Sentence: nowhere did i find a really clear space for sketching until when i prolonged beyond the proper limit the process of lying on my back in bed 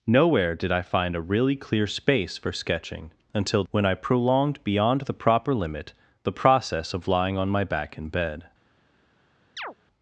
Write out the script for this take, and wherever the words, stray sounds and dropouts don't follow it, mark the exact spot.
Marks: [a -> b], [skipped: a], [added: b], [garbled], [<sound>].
nowhere did i find a really clear space for sketching until when i prolonged beyond the proper limit the process of lying on my back in bed [chirp]